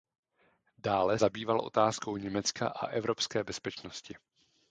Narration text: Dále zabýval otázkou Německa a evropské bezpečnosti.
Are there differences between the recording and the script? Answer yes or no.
no